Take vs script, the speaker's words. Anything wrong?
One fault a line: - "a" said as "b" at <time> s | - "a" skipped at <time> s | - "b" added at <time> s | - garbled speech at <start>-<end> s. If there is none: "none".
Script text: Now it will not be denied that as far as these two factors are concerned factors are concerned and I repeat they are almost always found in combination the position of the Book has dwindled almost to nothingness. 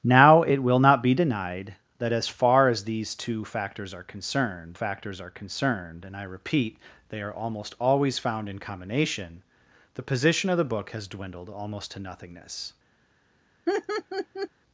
none